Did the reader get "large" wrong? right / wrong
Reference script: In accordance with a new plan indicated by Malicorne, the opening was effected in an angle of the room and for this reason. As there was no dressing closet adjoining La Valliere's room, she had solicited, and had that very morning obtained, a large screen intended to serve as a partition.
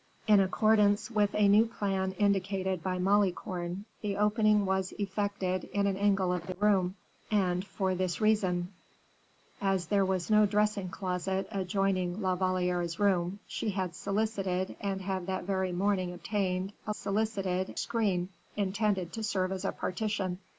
wrong